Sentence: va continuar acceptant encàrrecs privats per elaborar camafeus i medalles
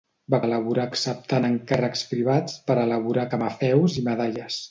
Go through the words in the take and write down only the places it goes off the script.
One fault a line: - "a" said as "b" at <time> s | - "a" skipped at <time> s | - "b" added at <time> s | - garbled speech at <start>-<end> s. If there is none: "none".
- "continuar" said as "elaborar" at 0.4 s